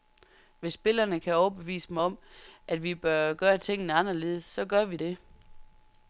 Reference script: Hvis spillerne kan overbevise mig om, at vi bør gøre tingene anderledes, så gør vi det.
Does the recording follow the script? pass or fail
pass